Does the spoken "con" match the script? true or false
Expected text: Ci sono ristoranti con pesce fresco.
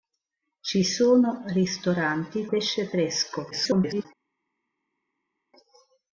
false